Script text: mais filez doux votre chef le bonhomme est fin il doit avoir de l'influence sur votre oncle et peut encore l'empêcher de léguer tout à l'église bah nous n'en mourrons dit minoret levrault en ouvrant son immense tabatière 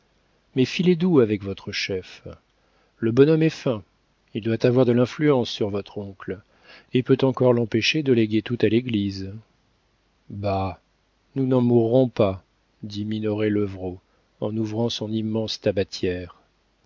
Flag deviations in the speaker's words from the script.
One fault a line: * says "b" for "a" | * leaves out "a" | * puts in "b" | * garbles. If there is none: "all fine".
* puts in "avec"
* puts in "pas"